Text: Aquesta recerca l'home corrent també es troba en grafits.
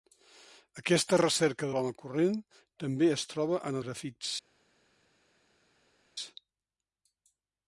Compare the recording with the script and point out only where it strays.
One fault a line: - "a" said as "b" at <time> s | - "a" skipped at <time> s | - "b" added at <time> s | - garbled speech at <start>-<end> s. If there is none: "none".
none